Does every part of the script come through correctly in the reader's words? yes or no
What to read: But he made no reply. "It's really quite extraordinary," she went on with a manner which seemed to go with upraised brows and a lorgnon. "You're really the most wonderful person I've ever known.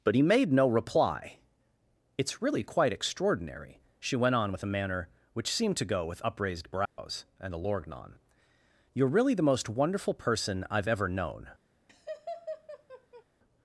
yes